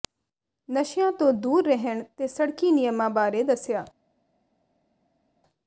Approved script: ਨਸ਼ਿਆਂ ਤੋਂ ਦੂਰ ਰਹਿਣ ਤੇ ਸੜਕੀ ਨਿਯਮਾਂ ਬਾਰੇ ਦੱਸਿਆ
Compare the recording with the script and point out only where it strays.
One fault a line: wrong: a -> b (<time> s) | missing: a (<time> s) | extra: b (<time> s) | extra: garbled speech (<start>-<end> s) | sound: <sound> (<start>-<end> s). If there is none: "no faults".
no faults